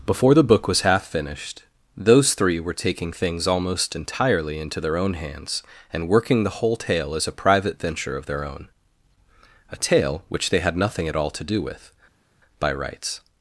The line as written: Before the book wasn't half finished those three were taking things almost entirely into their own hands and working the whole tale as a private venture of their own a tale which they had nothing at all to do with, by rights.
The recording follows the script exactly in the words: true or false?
false